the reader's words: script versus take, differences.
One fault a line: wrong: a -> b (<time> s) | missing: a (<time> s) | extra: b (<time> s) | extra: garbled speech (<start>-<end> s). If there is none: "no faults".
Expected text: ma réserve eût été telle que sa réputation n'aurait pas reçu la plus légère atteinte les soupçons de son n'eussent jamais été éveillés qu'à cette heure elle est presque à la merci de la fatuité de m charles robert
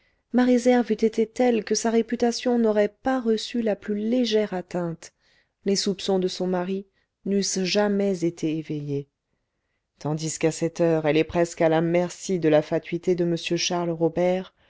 extra: mari (6.5 s)
extra: tandis (10.0 s)